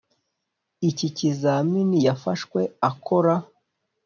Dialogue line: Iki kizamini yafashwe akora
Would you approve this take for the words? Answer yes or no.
yes